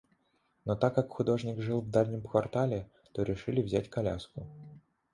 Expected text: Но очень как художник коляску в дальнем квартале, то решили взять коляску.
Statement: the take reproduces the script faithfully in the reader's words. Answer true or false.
false